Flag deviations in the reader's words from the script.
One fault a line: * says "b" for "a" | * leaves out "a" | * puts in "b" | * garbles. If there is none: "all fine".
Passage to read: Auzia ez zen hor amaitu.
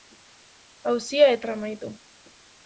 * leaves out "zen"